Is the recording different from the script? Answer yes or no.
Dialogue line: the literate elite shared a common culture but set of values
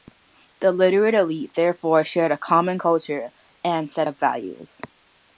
yes